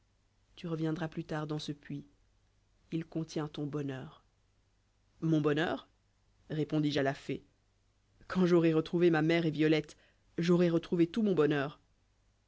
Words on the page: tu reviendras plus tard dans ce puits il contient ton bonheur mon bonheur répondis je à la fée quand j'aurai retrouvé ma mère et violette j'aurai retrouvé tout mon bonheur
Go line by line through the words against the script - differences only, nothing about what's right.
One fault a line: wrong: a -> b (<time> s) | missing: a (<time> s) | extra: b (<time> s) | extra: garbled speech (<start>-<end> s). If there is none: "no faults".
no faults